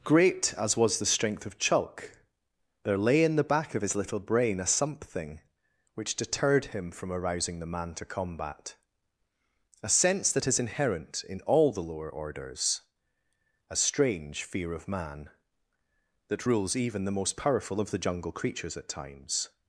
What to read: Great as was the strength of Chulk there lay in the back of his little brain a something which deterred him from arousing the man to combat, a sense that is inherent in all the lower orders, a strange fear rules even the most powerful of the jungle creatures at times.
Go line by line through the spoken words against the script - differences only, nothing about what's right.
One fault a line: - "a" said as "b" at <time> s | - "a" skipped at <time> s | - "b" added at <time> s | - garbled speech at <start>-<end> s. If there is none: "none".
- "of man that" added at 14.7 s